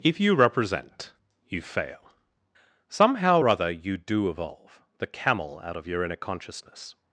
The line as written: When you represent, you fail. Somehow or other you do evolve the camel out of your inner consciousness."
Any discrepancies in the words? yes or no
yes